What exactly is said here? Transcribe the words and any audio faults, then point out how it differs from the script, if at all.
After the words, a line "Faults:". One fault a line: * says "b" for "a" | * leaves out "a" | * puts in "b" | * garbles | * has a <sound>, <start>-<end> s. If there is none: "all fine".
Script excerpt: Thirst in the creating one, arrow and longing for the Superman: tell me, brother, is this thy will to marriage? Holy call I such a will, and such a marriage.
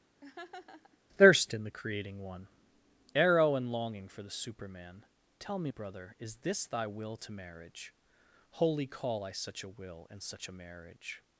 Thirst in the creating one, arrow and longing for the Superman: tell me, brother, is this thy will to marriage? Holy call I such a will, and such a marriage.
Faults:
* has a laugh, 0.2-1.0 s